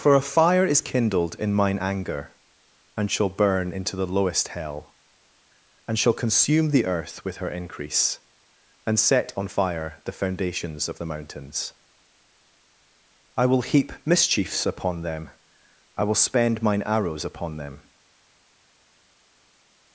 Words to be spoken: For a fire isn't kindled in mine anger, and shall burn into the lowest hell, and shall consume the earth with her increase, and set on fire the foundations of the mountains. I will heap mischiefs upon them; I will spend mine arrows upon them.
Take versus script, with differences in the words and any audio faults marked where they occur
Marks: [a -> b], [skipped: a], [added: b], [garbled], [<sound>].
For a fire [isn't -> is] kindled in mine anger, and shall burn into the lowest hell, and shall consume the earth with her increase, and set on fire the foundations of the mountains. I will heap mischiefs upon them; I will spend mine arrows upon them.